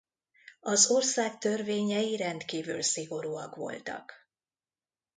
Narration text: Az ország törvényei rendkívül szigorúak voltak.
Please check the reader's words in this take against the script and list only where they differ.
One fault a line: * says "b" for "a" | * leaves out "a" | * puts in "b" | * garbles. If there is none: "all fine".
all fine